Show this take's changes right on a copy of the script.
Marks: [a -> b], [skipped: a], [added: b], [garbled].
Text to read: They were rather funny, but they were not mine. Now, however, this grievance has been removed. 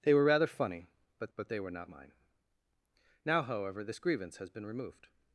They were rather funny, but [added: but] they were not mine. Now, however, this grievance has been removed.